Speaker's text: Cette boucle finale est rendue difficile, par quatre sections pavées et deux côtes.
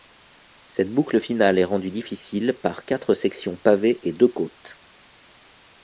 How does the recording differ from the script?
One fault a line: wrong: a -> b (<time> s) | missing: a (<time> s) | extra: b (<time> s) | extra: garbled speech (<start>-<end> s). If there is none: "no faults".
no faults